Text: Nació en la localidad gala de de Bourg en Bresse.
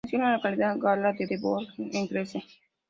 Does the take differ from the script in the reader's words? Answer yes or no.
no